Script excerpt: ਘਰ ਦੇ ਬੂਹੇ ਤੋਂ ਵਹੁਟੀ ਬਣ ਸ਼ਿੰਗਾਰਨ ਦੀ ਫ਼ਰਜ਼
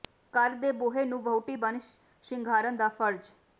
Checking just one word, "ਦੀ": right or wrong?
wrong